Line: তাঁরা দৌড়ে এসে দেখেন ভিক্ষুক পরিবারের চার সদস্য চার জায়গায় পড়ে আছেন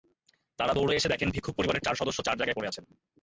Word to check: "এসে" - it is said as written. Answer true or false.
true